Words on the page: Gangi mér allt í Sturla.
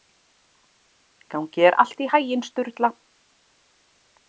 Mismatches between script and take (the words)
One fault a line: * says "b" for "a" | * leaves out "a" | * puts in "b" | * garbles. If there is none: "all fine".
* says "þér" for "mér"
* puts in "haginn"